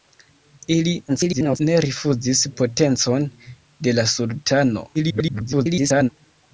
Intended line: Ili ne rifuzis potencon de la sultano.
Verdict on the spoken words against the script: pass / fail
fail